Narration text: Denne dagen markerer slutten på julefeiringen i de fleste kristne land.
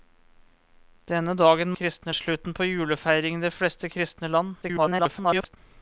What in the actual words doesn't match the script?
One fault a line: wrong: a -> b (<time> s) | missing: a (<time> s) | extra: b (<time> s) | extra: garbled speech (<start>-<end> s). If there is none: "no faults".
wrong: markerer -> kristne (1.8 s)
extra: garbled speech (4.6-5.6 s)